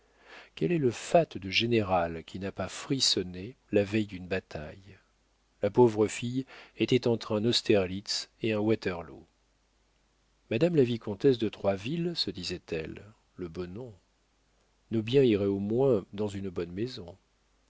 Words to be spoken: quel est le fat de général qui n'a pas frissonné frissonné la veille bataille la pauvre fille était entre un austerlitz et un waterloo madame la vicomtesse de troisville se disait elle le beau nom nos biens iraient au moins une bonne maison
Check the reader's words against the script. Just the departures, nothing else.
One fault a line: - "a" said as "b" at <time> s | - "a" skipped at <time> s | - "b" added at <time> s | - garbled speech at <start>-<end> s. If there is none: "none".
- "frissonné" skipped at 3.5 s
- "d'une" added at 4.1 s
- "dans" added at 16.1 s